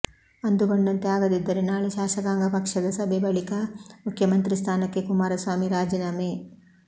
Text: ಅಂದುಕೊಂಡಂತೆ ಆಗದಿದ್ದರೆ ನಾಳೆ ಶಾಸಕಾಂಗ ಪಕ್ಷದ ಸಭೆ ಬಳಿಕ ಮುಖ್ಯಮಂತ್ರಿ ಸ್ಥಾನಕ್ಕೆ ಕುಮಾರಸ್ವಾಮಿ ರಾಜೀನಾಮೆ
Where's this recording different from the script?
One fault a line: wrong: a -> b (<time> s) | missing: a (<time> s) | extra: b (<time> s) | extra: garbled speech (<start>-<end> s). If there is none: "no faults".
no faults